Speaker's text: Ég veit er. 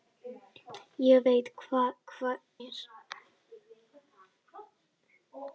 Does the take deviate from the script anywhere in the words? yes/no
no